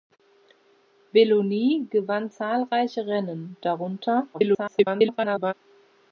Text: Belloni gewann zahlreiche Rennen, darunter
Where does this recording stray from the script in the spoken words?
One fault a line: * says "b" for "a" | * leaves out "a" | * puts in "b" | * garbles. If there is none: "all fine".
* garbles